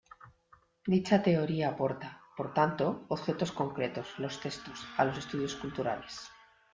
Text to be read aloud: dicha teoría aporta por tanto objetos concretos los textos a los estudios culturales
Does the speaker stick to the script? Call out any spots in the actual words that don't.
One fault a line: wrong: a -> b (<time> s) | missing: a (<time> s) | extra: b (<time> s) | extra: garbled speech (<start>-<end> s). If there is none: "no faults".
no faults